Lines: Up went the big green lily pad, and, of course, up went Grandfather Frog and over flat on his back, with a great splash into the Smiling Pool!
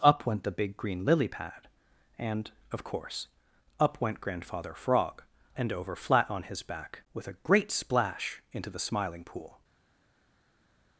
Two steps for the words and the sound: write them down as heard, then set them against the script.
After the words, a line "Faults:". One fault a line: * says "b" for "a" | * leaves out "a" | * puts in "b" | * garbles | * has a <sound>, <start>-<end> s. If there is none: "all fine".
Up went the big green lily pad, and, of course, up went Grandfather Frog and over flat on his back, with a great splash into the Smiling Pool!
Faults:
all fine